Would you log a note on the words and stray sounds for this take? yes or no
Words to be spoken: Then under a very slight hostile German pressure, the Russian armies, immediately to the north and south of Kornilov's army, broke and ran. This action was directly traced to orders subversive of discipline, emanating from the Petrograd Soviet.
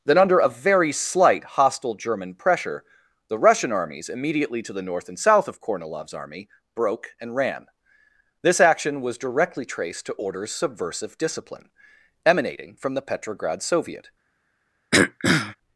yes